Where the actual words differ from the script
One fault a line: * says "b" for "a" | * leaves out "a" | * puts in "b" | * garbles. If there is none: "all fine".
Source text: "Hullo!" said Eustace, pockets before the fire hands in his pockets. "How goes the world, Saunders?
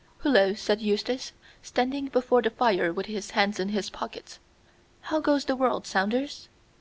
* says "standing" for "pockets"
* puts in "with his"